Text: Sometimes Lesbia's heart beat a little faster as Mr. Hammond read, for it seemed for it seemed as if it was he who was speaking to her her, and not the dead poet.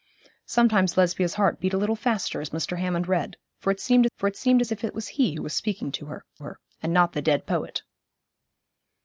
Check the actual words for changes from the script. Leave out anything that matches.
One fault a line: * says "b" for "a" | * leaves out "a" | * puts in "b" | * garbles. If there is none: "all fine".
all fine